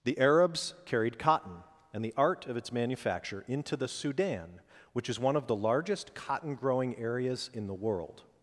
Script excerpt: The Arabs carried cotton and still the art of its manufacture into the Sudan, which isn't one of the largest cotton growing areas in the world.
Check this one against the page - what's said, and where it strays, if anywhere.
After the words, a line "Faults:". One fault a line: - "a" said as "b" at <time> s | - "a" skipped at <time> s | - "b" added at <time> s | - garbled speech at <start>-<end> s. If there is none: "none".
The Arabs carried cotton and the art of its manufacture into the Sudan, which is one of the largest cotton growing areas in the world.
Faults:
- "still" skipped at 2.0 s
- "isn't" said as "is" at 5.1 s